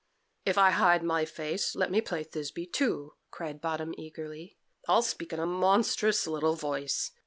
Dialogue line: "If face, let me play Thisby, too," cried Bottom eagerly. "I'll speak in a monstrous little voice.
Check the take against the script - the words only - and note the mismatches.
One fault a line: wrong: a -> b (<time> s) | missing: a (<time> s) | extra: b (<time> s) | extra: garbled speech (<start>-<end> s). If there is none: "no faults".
extra: I hide my (0.6 s)